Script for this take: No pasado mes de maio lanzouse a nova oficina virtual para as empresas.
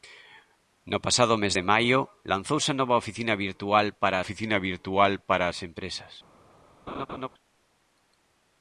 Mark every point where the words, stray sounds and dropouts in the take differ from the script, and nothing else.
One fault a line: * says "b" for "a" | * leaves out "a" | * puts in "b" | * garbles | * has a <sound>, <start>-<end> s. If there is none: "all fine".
* puts in "oficina virtual para"
* has a laugh, 6.9-7.3 s